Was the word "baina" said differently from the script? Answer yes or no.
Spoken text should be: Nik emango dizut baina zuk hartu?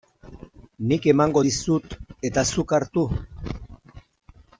yes